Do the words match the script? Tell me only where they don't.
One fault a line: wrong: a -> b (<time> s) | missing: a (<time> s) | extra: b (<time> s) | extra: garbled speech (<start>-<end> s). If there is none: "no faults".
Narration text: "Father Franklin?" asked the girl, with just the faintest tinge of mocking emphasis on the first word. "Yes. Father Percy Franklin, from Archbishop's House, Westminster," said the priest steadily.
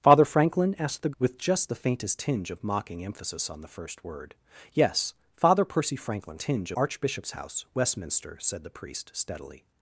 missing: girl (1.1 s)
wrong: from -> tinge (6.4 s)